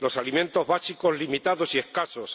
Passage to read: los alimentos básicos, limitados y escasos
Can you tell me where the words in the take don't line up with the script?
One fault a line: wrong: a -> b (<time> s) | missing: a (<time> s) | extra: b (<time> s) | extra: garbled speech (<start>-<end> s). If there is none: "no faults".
no faults